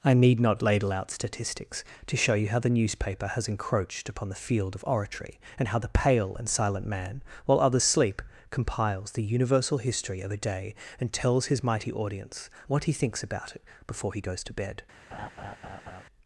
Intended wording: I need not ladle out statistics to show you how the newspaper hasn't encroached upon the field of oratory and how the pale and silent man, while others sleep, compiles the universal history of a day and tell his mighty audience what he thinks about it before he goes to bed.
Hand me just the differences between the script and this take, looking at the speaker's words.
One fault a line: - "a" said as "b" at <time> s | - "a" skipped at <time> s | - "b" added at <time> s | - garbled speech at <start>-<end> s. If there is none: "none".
- "hasn't" said as "has" at 3.3 s
- "tell" said as "tells" at 11.1 s